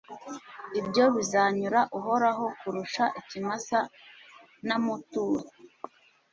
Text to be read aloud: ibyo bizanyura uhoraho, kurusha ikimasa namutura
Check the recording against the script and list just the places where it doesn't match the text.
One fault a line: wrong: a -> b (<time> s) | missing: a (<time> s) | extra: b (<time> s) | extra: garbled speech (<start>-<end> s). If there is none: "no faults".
no faults